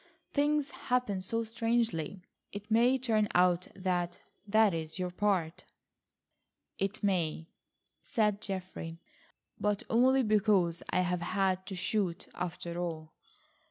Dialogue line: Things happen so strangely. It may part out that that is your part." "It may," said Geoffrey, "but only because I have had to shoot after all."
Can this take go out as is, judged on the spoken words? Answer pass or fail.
fail